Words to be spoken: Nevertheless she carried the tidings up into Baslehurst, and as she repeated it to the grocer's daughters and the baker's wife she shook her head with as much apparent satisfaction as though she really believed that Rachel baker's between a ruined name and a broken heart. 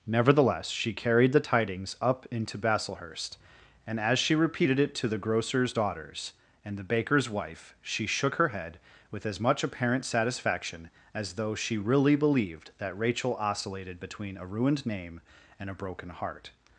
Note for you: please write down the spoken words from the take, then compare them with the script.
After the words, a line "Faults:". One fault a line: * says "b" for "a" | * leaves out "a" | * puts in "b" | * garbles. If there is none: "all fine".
Nevertheless she carried the tidings up into Baslehurst, and as she repeated it to the grocer's daughters and the baker's wife she shook her head with as much apparent satisfaction as though she really believed that Rachel oscillated between a ruined name and a broken heart.
Faults:
* says "oscillated" for "baker's"